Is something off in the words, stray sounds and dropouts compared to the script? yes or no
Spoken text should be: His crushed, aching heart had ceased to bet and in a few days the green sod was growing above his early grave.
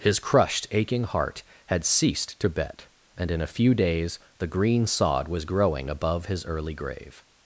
no